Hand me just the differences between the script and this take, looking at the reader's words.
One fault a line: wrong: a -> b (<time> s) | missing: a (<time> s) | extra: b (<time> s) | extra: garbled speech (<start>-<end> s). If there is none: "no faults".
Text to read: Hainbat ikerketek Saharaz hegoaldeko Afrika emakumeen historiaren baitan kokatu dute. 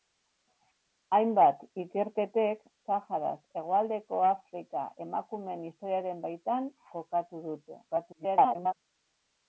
extra: garbled speech (7.9-8.8 s)